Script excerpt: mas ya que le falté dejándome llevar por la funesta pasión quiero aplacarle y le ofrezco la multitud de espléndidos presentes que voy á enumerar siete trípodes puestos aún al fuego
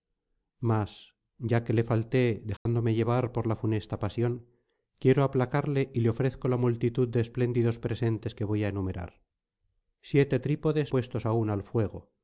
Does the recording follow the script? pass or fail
pass